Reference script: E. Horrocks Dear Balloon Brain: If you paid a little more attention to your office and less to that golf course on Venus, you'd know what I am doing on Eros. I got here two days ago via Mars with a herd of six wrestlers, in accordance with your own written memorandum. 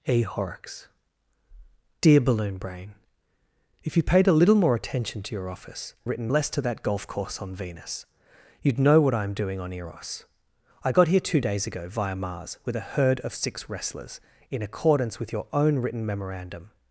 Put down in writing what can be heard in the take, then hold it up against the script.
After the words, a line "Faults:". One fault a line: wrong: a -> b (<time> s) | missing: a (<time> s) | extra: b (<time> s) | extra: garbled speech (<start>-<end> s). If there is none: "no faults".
E. Horrocks Dear Balloon Brain: If you paid a little more attention to your office written less to that golf course on Venus, you'd know what I am doing on Eros. I got here two days ago via Mars with a herd of six wrestlers, in accordance with your own written memorandum.
Faults:
wrong: and -> written (6.0 s)